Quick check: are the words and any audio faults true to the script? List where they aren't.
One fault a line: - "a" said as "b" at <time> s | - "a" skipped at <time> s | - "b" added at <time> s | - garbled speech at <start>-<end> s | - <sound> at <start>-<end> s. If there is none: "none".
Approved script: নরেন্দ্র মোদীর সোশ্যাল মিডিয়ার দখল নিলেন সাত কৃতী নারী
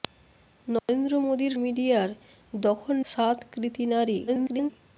- dropout at 0.8-0.9 s
- "সোশ্যাল" skipped at 1.5 s
- "নিলেন" skipped at 2.9 s
- garbled speech at 4.3-4.7 s